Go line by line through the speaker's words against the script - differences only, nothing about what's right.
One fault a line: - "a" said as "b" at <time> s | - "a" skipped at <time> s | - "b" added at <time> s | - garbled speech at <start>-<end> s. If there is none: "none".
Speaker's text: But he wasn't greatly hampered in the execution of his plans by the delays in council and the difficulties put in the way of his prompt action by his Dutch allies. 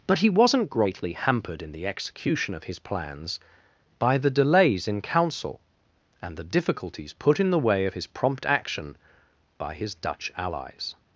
none